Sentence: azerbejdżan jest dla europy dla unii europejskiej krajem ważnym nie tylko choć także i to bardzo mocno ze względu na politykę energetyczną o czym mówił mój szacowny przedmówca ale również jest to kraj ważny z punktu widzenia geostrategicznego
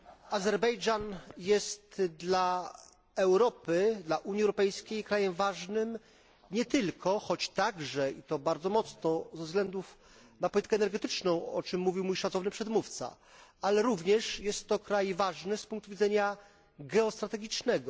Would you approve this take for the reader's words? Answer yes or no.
yes